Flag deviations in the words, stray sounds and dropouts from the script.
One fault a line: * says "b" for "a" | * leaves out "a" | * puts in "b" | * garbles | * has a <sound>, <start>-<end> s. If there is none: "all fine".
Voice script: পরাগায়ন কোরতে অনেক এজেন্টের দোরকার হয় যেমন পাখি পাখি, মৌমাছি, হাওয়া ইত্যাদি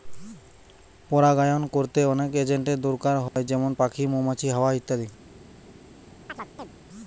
* has a dropout, 3.3-3.4 s
* leaves out "পাখি"
* has a chirp, 6.3-6.7 s